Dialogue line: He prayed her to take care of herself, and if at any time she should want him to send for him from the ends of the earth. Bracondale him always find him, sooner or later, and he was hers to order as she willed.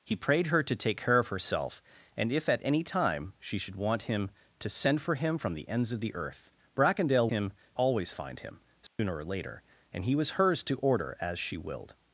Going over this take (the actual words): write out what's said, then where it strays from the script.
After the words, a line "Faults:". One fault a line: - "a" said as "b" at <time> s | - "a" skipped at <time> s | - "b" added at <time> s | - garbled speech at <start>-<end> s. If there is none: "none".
He prayed her to take care of herself, and if at any time she should want him to send for him from the ends of the earth. Bracondale him always find him, sooner or later, and he was hers to order as she willed.
Faults:
none